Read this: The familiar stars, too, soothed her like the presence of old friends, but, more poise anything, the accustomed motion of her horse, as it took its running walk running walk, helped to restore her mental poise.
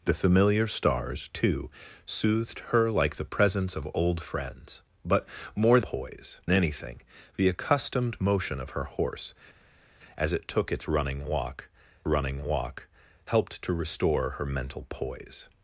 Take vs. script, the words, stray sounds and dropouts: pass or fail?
pass